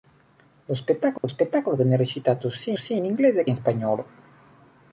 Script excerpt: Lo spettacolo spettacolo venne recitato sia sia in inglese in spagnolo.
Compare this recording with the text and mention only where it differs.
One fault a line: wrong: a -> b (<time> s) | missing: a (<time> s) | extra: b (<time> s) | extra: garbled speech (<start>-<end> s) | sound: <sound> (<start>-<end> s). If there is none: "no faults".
sound: dropout (1.2-1.2 s)